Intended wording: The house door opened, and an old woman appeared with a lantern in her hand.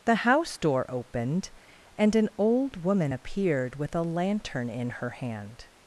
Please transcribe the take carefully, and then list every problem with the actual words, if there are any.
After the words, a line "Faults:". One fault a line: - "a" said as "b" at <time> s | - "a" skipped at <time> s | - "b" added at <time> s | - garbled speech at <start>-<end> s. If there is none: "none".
The house door opened, and an old woman appeared with a lantern in her hand.
Faults:
none